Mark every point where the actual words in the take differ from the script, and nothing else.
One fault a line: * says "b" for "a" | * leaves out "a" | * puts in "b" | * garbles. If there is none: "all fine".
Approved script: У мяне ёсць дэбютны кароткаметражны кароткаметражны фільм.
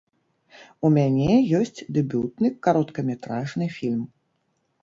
* leaves out "кароткаметражны"